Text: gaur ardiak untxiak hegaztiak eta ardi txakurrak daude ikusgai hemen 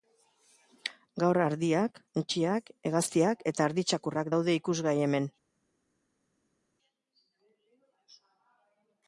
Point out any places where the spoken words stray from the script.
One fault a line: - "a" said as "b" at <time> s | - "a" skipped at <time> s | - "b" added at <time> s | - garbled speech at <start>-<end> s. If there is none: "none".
none